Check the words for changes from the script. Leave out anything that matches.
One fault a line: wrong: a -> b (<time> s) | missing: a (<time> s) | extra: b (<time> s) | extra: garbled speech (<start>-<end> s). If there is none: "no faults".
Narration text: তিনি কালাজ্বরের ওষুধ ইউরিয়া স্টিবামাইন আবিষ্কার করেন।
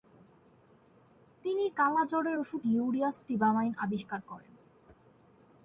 no faults